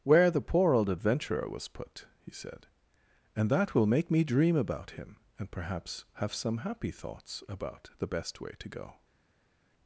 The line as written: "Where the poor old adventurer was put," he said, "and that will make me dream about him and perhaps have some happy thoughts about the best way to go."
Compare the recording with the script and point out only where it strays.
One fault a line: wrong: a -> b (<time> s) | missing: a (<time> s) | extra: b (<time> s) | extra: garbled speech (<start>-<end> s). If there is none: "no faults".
no faults